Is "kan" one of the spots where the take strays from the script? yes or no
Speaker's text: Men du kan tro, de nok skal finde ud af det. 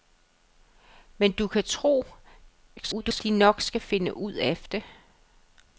no